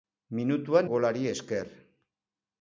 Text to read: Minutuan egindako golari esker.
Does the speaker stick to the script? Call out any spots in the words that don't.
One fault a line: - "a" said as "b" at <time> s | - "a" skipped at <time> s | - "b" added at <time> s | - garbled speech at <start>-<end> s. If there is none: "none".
- "egindako" skipped at 0.9 s